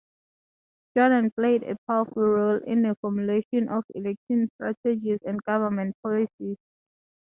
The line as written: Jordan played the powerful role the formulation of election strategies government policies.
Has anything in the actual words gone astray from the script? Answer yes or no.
yes